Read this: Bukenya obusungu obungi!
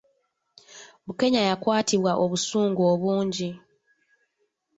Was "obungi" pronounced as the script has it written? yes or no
yes